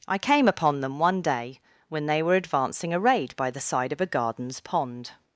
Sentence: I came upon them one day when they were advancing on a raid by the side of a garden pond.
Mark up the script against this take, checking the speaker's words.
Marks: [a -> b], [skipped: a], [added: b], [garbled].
I came upon them one day when they were advancing [skipped: on] a raid by the side of a [garden -> gardens] pond.